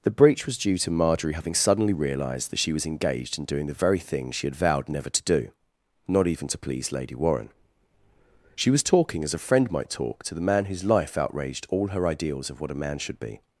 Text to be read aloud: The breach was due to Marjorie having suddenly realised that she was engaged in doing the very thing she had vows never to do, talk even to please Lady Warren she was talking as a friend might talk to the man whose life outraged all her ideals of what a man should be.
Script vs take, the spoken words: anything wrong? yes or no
yes